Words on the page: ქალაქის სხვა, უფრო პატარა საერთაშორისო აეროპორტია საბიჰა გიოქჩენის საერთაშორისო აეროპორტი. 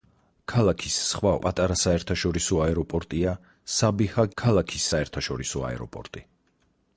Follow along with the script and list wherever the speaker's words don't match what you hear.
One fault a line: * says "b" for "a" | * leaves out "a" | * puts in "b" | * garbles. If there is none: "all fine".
* leaves out "უფრო"
* says "ქალაქის" for "გიოქჩენის"